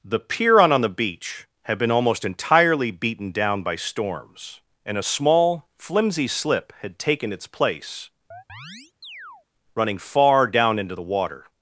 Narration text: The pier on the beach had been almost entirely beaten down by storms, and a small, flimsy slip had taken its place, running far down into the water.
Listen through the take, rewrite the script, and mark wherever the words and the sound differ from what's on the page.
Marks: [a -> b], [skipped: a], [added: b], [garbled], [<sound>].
The pier on [added: on] the beach had been almost entirely beaten down by storms, and a small, flimsy slip had taken its place, [chirp] running far down into the water.